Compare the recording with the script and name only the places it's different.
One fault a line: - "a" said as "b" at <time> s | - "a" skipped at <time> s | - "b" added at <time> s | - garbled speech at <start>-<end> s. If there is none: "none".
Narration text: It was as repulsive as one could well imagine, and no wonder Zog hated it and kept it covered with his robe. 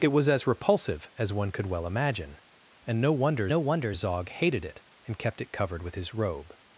- "no wonder" added at 3.5 s